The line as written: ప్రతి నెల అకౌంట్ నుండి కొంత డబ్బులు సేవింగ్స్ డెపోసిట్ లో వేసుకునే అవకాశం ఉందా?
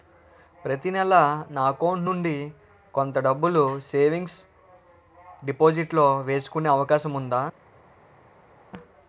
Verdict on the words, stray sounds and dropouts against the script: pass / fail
fail